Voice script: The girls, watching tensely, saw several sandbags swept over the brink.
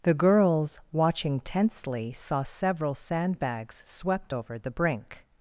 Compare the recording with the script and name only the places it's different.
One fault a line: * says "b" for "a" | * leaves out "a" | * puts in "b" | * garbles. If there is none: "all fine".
all fine